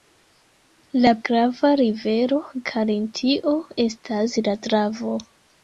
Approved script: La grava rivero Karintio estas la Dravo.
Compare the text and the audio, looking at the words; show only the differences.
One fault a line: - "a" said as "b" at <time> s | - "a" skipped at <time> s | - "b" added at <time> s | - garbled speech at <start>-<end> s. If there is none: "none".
none